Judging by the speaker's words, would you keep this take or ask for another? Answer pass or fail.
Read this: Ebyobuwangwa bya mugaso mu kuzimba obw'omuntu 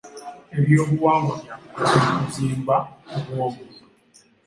pass